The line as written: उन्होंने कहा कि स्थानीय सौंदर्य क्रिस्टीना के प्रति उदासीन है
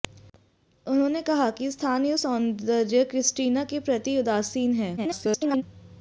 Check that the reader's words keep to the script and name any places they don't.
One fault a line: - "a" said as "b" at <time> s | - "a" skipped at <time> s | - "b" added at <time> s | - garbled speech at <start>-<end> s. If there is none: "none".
- garbled speech at 5.0-5.6 s